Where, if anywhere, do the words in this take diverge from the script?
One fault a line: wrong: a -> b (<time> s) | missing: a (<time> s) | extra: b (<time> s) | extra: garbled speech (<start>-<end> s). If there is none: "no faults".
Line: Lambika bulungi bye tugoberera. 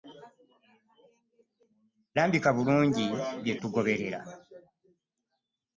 no faults